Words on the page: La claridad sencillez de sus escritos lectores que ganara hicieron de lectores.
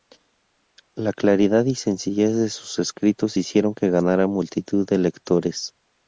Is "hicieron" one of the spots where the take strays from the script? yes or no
yes